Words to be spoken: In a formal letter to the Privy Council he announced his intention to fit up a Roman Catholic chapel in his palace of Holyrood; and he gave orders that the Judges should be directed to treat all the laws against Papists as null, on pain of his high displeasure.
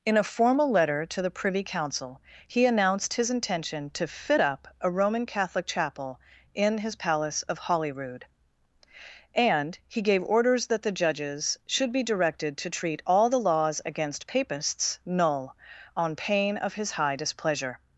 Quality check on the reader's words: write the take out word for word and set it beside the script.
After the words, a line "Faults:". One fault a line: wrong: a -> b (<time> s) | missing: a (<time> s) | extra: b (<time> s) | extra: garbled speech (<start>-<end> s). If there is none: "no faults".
In a formal letter to the Privy Council he announced his intention to fit up a Roman Catholic chapel in his palace of Holyrood; and he gave orders that the Judges should be directed to treat all the laws against Papists null, on pain of his high displeasure.
Faults:
missing: as (15.0 s)